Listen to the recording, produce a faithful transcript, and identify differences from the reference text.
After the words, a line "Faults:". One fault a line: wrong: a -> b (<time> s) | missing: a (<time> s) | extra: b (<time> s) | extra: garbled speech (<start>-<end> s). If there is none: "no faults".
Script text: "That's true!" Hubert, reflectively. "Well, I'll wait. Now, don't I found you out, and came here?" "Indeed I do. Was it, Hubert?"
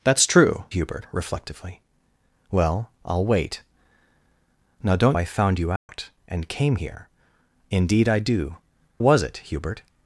"That's true!" Hubert, reflectively. "Well, I'll wait. Now, don't I found you out, and came here?" "Indeed I do. Was it, Hubert?"
Faults:
no faults